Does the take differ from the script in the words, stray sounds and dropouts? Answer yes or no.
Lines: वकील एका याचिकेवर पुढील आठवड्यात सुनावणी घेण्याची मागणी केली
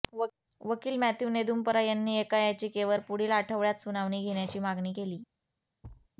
yes